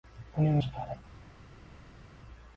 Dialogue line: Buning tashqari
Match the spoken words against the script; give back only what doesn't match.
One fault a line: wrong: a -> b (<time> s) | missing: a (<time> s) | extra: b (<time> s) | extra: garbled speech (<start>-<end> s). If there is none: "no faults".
no faults